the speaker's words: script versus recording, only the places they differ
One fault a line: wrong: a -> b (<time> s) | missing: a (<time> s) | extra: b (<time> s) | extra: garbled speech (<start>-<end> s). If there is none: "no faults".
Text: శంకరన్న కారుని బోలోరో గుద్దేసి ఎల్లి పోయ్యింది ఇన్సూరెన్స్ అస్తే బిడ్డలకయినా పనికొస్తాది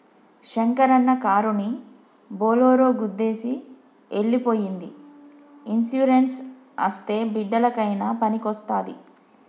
no faults